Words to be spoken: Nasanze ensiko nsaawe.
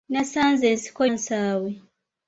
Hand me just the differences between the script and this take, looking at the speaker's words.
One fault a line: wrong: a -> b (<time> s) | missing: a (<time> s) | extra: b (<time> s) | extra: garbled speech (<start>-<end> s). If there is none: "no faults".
no faults